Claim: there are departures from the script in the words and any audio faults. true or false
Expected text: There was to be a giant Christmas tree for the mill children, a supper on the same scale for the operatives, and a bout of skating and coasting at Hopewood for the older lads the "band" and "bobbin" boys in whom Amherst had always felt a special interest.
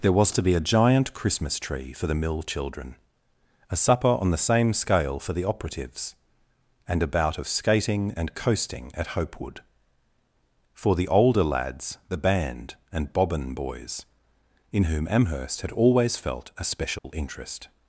true